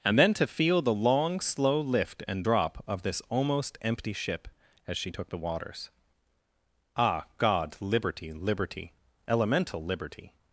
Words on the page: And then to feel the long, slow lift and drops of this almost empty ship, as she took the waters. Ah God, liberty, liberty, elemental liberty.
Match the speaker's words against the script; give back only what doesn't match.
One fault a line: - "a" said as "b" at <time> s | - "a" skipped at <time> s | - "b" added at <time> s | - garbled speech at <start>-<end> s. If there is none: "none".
- "drops" said as "drop" at 2.4 s